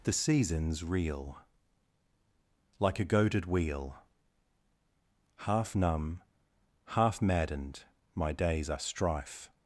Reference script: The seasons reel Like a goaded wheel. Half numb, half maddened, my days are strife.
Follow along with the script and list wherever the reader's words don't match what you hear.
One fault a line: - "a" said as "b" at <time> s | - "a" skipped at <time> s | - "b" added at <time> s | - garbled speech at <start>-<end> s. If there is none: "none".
none